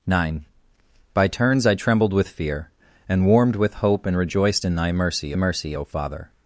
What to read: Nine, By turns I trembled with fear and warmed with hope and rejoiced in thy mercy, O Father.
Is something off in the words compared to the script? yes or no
yes